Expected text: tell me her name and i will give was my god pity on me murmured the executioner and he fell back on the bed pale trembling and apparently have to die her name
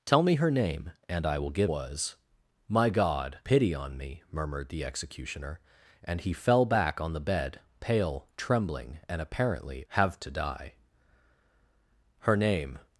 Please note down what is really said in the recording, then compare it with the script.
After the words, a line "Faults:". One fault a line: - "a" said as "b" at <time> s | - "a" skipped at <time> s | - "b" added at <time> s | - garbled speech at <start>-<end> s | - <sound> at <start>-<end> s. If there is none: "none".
tell me her name and i will give was my god pity on me murmured the executioner and he fell back on the bed pale trembling and apparently have to die her name
Faults:
none